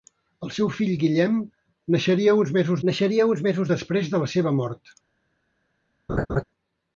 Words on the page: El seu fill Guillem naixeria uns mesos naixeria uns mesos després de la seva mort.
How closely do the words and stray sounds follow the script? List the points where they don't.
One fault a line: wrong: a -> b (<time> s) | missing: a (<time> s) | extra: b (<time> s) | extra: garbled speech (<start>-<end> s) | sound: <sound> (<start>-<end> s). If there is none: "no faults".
sound: laugh (6.1-6.4 s)